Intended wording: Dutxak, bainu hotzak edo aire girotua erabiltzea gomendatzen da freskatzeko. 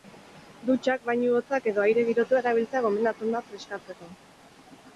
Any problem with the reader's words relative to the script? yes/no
no